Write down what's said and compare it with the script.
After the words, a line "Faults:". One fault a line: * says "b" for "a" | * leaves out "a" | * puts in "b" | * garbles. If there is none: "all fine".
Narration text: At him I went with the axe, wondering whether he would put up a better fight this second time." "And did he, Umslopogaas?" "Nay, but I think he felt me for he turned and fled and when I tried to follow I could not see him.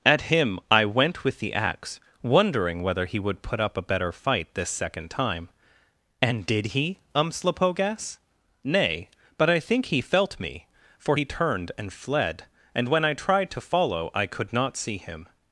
At him I went with the axe, wondering whether he would put up a better fight this second time." "And did he, Umslopogaas?" "Nay, but I think he felt me for he turned and fled and when I tried to follow I could not see him.
Faults:
all fine